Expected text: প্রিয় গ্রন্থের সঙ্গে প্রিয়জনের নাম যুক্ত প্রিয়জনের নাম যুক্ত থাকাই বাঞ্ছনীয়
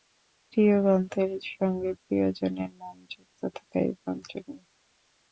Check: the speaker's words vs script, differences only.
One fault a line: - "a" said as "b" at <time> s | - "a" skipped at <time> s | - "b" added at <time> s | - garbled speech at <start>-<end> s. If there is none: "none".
- "প্রিয়জনের নাম যুক্ত" skipped at 3.4 s